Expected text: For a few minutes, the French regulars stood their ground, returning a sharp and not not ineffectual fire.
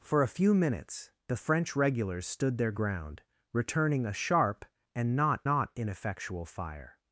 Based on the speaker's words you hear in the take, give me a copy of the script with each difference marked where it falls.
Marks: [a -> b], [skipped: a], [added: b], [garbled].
For a few minutes, the French regulars stood their ground, returning a sharp and not not ineffectual fire.